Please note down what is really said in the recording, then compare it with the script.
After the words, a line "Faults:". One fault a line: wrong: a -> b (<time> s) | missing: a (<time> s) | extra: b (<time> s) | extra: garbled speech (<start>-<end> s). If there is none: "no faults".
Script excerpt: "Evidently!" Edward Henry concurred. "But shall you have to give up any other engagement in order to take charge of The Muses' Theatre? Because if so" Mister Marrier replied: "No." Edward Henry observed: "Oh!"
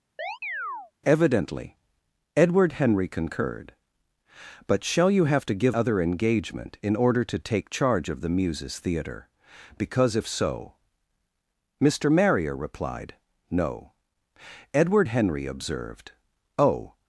"Evidently!" Edward Henry concurred. "But shall you have to give other engagement in order to take charge of The Muses' Theatre? Because if so" Mister Marrier replied: "No." Edward Henry observed: "Oh!"
Faults:
missing: up any (5.8 s)